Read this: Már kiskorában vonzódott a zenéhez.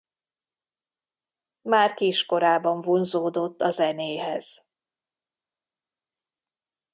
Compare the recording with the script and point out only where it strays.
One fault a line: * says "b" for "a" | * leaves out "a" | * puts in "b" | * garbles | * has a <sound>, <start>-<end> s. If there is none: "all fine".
all fine